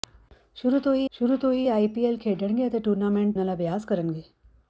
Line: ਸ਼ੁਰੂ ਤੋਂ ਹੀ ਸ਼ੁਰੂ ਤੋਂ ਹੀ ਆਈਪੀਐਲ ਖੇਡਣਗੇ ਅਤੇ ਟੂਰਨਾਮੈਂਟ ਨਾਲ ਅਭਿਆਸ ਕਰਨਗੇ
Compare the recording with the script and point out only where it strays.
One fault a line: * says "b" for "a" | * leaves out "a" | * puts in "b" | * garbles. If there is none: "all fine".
all fine